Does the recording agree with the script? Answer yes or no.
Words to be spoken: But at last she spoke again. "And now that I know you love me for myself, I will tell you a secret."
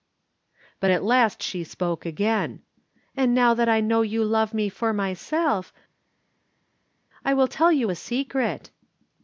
yes